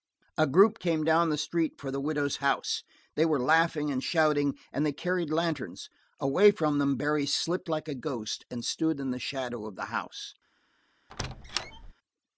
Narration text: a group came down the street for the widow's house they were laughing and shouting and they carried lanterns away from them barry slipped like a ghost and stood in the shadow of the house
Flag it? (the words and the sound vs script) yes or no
yes